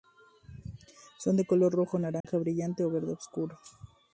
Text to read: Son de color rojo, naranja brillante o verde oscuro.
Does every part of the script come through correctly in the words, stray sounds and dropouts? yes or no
no